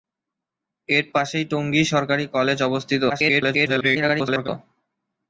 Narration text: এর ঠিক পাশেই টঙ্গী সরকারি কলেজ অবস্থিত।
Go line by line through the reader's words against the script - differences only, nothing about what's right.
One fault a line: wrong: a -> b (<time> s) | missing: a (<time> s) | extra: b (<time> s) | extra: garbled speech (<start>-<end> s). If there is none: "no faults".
missing: ঠিক (1.1 s)
extra: garbled speech (3.1-4.5 s)